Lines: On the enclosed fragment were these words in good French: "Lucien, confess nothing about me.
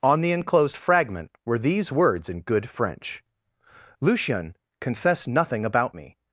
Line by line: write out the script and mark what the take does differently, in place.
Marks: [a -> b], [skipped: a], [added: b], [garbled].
On the enclosed fragment were these words in good French: "Lucien, confess nothing about me.